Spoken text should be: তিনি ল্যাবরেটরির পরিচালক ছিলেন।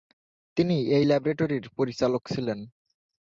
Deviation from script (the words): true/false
true